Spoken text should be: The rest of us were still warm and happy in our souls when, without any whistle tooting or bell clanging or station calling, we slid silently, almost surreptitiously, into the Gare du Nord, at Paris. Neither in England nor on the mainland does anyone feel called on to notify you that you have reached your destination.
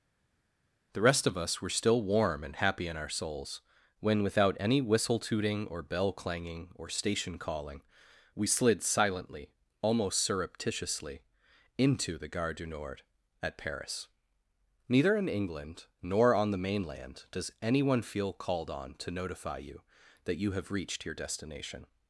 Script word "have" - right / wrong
right